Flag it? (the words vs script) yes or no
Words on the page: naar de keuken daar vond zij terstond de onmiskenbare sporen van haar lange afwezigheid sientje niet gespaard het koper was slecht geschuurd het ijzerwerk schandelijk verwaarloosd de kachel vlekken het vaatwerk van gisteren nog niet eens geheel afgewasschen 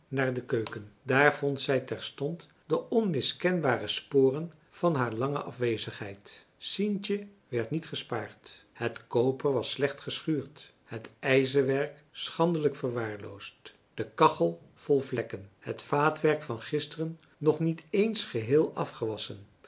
yes